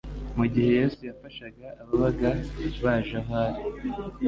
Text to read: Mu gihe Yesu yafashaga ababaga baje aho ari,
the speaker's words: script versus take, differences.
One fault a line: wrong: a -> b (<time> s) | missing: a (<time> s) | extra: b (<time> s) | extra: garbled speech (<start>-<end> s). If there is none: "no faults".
no faults